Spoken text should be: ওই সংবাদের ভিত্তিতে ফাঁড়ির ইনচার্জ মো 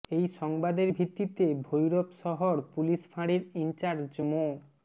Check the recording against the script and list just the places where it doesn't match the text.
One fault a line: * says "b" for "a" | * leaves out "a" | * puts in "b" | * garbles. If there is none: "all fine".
* says "এই" for "ওই"
* puts in "ভৈরব শহর পুলিশ"